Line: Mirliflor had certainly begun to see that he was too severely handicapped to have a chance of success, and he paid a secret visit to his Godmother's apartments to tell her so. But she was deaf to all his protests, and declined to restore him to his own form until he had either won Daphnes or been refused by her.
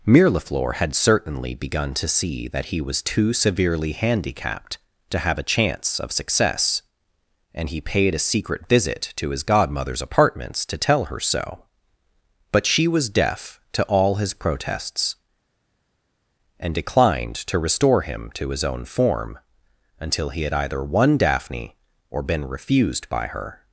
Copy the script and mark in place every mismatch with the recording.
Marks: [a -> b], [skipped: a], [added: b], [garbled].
Mirliflor had certainly begun to see that he was too severely handicapped to have a chance of success, and he paid a secret visit to his Godmother's apartments to tell her so. But she was deaf to all his protests, and declined to restore him to his own form until he had either won [Daphnes -> Daphne] or been refused by her.